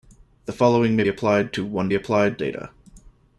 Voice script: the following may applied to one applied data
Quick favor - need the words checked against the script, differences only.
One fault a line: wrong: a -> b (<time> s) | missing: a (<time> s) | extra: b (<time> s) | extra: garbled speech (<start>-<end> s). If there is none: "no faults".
no faults